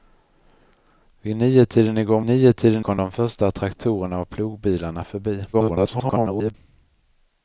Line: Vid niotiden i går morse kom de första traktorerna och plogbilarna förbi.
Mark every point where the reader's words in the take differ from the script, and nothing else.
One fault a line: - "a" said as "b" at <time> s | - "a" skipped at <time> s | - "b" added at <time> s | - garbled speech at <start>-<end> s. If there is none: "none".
- "morse" said as "niotiden" at 2.2 s
- garbled speech at 5.5-6.5 s